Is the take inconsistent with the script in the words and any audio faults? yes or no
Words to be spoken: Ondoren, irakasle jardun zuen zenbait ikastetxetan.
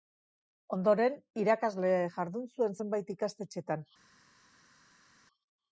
no